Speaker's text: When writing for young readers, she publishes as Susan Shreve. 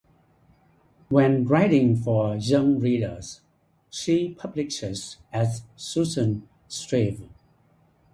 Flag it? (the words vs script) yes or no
no